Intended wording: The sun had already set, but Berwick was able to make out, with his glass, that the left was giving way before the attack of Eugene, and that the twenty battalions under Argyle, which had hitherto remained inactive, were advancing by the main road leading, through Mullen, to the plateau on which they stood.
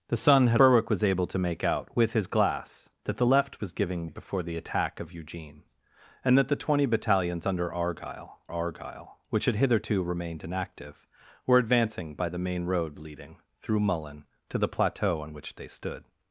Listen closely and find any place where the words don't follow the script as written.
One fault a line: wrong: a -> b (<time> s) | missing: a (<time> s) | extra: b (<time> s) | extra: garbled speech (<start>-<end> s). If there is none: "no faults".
missing: already set but (0.6 s)
missing: way (4.1 s)
extra: Argyle (8.5 s)